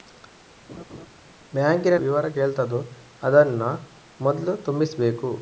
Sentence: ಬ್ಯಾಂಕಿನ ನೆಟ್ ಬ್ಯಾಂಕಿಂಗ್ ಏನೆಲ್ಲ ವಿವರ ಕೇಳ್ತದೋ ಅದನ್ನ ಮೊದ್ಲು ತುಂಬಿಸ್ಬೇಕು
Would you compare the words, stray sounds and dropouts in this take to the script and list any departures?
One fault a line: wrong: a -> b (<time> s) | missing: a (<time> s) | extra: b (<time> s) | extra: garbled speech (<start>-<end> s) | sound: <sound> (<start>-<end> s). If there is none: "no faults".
sound: laugh (0.7-1.1 s)
missing: ನೆಟ್ ಬ್ಯಾಂಕಿಂಗ್ ಏನೆಲ್ಲ (2.0 s)